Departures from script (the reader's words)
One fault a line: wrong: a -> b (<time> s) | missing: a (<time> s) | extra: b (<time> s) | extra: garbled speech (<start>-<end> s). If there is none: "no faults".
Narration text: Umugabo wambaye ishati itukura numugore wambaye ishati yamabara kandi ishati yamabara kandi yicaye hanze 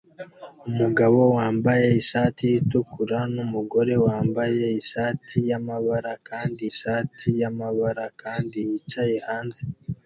no faults